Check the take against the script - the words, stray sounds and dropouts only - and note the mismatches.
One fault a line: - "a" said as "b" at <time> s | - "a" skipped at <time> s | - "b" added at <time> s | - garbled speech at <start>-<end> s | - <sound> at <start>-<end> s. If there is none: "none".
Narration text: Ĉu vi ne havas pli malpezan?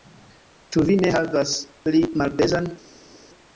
none